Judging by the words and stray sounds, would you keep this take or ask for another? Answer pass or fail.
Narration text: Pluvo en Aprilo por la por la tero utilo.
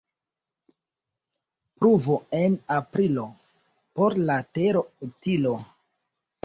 fail